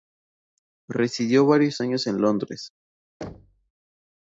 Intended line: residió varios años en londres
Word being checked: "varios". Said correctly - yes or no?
yes